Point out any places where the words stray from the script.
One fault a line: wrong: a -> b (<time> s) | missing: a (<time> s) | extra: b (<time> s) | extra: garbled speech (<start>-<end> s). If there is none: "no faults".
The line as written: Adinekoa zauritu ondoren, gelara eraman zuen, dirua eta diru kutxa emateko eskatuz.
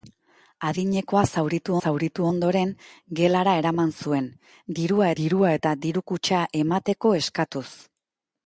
extra: zauritu (1.8 s)
extra: dirua (5.2 s)